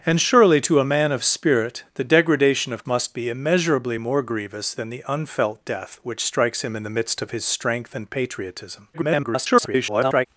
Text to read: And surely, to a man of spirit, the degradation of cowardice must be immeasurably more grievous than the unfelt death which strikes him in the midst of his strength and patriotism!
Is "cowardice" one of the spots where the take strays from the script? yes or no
yes